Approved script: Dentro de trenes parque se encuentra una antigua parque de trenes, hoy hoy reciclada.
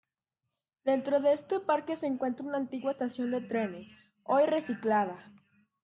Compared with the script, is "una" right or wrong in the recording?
right